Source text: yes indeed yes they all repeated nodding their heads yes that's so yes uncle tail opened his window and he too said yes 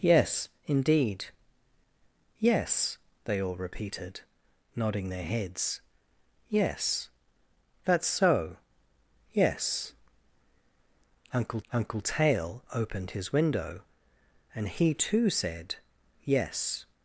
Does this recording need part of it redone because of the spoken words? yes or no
yes